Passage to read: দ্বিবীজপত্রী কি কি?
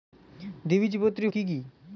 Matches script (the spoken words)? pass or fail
pass